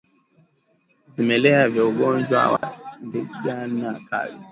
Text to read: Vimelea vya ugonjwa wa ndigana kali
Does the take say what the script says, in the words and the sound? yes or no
no